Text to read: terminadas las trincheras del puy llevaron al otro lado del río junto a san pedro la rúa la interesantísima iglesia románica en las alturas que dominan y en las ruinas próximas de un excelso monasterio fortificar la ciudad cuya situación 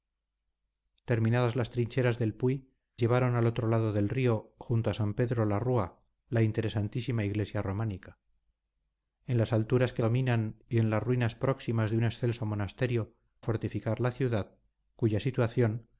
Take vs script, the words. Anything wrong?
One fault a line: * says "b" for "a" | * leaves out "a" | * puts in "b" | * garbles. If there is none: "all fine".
all fine